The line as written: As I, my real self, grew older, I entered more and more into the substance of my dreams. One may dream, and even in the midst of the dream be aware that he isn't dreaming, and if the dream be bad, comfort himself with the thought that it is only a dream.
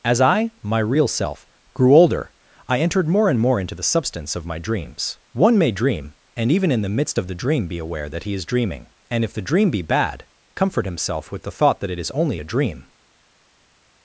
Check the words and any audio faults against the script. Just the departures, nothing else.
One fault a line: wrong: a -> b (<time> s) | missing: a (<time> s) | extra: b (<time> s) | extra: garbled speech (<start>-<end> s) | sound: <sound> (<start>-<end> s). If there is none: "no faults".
wrong: isn't -> is (8.3 s)